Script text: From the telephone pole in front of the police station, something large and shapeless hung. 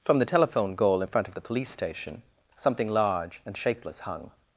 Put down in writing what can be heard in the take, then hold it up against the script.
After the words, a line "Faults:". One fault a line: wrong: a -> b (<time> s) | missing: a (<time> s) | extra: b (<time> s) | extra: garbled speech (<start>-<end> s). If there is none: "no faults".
From the telephone goal in front of the police station, something large and shapeless hung.
Faults:
wrong: pole -> goal (0.7 s)